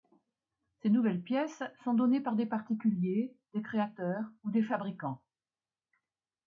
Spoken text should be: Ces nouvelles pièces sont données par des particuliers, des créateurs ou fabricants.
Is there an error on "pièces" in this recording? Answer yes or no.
no